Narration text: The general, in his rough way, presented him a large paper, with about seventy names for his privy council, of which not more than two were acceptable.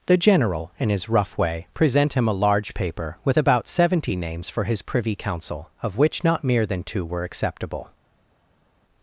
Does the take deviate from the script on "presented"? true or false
true